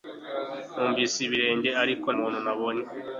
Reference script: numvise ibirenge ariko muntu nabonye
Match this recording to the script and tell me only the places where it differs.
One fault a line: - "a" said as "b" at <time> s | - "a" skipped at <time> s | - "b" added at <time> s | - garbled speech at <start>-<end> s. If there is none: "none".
none